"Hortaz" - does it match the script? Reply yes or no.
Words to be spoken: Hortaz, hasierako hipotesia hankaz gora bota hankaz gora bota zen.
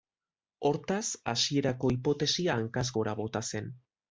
yes